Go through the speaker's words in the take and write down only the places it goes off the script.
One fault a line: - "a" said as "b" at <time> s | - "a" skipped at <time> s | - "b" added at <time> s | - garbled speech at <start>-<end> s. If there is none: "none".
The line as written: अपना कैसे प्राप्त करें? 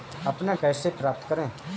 none